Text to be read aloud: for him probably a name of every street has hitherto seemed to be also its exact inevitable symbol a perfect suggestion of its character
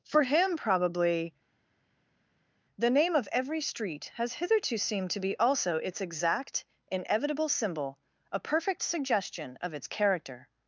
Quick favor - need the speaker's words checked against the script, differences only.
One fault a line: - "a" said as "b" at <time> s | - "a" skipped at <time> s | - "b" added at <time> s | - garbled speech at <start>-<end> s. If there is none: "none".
- "a" said as "the" at 2.8 s